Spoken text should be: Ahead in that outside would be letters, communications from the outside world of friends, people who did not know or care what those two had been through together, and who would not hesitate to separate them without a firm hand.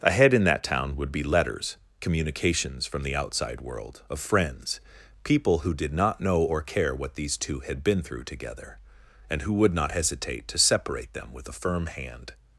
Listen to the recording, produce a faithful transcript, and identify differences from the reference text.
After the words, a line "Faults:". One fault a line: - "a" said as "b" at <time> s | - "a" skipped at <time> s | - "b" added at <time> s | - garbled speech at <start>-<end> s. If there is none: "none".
Ahead in that town would be letters, communications from the outside world of friends, people who did not know or care what these two had been through together, and who would not hesitate to separate them with a firm hand.
Faults:
- "outside" said as "town" at 0.6 s
- "those" said as "these" at 7.2 s
- "without" said as "with" at 11.3 s